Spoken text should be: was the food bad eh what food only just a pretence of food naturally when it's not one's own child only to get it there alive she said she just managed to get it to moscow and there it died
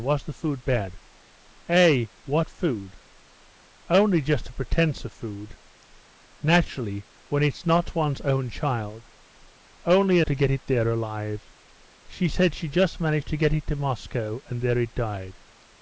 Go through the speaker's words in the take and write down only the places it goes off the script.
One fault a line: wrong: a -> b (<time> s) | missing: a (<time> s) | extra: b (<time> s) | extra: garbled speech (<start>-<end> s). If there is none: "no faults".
no faults